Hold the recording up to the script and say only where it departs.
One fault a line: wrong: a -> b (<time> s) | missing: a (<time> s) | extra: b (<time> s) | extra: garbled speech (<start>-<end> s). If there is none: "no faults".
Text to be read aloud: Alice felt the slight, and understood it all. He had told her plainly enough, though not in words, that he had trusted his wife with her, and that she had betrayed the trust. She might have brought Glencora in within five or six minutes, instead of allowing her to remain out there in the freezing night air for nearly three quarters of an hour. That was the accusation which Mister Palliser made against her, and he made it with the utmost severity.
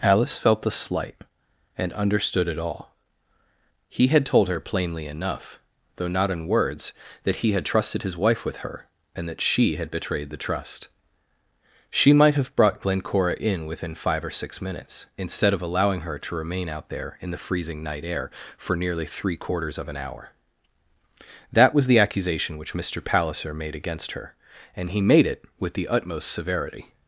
no faults